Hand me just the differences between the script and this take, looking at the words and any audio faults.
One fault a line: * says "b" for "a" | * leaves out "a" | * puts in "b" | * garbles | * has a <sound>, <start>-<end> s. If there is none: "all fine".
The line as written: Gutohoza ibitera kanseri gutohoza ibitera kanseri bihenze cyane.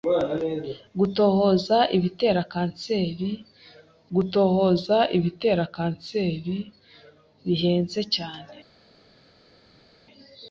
all fine